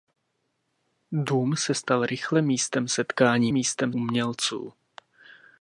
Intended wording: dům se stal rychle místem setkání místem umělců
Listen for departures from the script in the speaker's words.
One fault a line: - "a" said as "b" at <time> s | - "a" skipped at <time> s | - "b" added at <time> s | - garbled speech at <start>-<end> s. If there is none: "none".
none